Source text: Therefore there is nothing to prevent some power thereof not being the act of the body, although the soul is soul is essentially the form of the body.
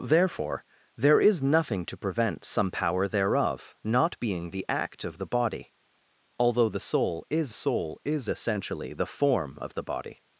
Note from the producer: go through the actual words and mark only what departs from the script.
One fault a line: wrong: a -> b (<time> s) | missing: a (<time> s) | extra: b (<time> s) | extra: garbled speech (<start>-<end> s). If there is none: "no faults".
no faults